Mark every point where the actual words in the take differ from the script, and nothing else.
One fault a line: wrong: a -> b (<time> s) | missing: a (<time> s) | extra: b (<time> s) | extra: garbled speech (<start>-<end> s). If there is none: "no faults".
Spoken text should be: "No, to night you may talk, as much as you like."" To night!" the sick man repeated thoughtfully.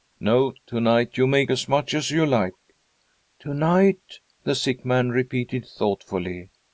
missing: talk (1.4 s)